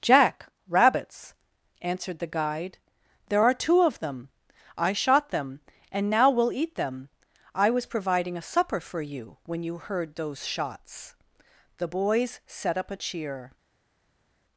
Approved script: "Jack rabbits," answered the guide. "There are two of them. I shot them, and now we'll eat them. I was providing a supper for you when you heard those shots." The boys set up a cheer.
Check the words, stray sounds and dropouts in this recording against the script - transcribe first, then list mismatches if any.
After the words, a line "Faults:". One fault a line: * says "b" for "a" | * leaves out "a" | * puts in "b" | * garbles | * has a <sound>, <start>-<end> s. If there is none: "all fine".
"Jack rabbits," answered the guide. "There are two of them. I shot them, and now we'll eat them. I was providing a supper for you when you heard those shots." The boys set up a cheer.
Faults:
all fine